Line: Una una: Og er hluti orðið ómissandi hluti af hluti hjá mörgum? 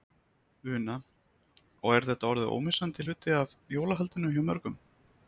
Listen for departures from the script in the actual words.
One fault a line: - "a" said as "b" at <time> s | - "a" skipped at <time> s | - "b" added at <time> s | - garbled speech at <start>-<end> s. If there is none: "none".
- "una" skipped at 0.9 s
- "hluti" said as "þetta" at 2.1 s
- "hluti" said as "jólahaldinu" at 3.8 s